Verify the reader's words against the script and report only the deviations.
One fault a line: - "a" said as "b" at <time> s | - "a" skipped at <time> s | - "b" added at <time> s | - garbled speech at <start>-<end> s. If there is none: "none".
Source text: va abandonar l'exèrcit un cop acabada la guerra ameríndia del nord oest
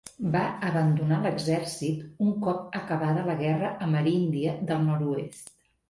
none